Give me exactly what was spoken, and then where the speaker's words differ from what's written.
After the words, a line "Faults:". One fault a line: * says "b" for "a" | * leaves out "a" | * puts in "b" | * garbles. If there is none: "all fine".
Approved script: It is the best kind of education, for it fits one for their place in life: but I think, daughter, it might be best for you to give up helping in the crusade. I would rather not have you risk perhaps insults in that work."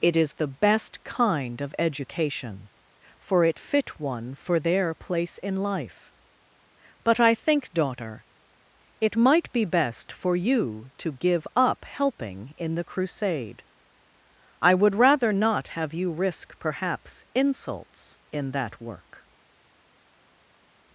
It is the best kind of education, for it fit one for their place in life: but I think, daughter, it might be best for you to give up helping in the crusade. I would rather not have you risk perhaps insults in that work."
Faults:
* says "fit" for "fits"